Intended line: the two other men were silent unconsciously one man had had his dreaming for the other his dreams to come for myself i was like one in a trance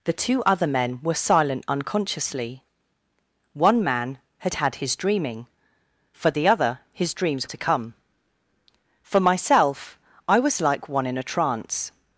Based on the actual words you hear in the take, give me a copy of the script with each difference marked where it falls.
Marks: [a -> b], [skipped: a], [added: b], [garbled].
the two other men were silent unconsciously one man had had his dreaming for the other his dreams to come for myself i was like one in a trance